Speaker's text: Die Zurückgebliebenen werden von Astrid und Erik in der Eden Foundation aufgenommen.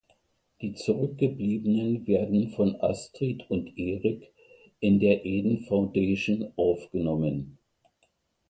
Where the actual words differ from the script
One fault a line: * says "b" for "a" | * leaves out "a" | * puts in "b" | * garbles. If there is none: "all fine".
all fine